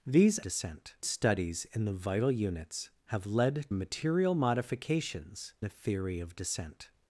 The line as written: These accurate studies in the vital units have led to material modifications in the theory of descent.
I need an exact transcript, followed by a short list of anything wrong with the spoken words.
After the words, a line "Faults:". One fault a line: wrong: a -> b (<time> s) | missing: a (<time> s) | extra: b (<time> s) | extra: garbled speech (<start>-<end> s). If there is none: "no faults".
These descent studies in the vital units have led material modifications the theory of descent.
Faults:
wrong: accurate -> descent (0.4 s)
missing: to (3.7 s)
missing: in (5.5 s)